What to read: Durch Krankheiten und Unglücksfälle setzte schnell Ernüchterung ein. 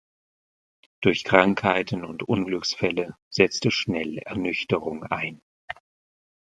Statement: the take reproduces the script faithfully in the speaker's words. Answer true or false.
true